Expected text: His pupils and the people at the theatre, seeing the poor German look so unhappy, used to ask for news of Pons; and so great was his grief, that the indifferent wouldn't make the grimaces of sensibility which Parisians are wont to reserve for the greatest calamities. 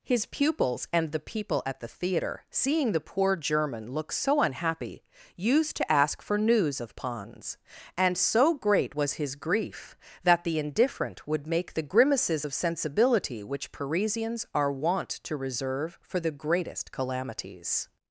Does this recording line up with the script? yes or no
no